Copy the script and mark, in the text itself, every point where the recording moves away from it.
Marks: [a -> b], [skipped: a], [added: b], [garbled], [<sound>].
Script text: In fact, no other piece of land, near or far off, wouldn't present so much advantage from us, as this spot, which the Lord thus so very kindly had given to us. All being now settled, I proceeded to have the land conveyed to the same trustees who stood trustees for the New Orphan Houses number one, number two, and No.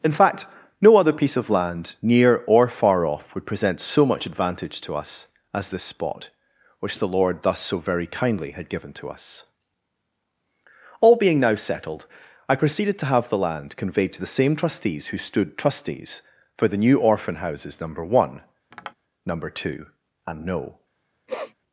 In fact, no other piece of land, near or far off, [wouldn't -> would] present so much advantage [from -> to] us, as this spot, which the Lord thus so very kindly had given to us. All being now settled, I proceeded to have the land conveyed to the same trustees who stood trustees for the New Orphan Houses number one, [tap] number two, and No. [sniff]